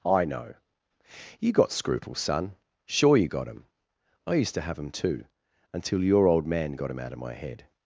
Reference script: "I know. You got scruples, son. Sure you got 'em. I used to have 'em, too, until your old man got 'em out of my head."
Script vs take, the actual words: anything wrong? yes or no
no